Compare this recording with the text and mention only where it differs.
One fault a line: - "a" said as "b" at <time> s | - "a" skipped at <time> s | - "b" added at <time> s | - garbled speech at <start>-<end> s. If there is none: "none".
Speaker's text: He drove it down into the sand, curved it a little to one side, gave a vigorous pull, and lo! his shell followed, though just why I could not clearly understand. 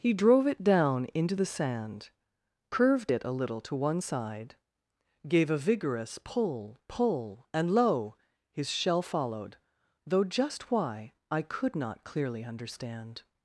- "pull" added at 6.9 s